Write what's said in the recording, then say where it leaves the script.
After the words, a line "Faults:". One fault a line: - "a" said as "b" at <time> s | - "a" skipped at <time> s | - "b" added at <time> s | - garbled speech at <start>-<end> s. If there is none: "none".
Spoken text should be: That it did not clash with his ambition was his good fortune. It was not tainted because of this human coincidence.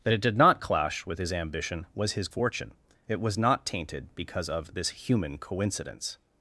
That it did not clash with his ambition was his fortune. It was not tainted because of this human coincidence.
Faults:
- "good" skipped at 2.3 s